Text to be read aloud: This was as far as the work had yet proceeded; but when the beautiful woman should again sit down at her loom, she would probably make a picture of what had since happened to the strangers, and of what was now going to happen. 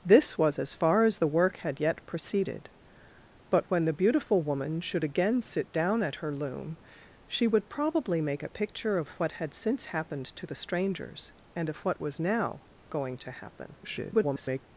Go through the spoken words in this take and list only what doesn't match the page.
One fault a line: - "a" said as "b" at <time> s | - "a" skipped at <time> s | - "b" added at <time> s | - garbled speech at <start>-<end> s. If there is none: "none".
- garbled speech at 13.8-14.6 s